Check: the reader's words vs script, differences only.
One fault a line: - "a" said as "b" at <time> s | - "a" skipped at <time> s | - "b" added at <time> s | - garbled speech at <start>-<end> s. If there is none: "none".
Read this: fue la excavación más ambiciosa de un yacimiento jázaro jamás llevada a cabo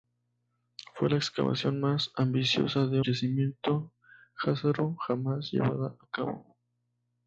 - "un" skipped at 3.0 s